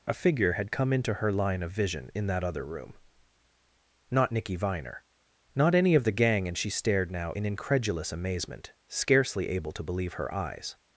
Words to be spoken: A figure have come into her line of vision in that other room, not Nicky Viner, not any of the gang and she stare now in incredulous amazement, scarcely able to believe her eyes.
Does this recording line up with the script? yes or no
no